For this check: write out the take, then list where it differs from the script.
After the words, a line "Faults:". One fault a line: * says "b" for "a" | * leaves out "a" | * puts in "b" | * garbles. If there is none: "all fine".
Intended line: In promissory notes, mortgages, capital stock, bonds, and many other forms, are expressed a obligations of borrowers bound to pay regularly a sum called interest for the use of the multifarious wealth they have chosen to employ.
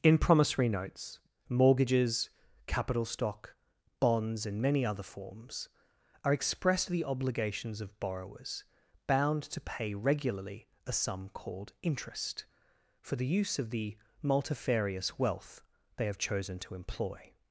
In promissory notes, mortgages, capital stock, bonds, and many other forms, are expressed the obligations of borrowers bound to pay regularly a sum called interest for the use of the multifarious wealth they have chosen to employ.
Faults:
* says "the" for "a"